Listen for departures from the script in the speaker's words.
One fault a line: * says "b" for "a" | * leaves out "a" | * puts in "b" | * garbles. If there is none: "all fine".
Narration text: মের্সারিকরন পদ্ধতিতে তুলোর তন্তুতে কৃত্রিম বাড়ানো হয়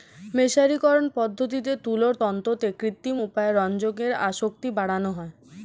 * puts in "উপায়ে রঞ্জকের আসক্তি"